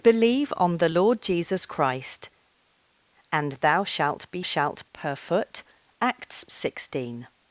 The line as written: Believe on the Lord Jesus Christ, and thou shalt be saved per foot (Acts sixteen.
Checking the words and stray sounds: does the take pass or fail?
fail